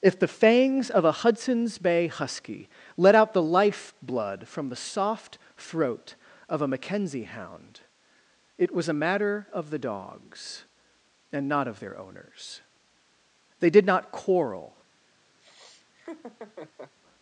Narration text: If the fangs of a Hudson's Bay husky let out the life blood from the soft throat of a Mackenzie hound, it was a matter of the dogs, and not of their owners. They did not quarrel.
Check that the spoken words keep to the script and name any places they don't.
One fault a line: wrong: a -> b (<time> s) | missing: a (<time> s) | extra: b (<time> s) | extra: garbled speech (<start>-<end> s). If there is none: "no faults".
no faults